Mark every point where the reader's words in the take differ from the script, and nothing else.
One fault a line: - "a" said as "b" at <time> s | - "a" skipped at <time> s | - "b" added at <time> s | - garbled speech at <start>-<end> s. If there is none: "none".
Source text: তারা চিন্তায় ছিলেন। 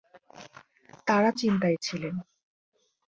none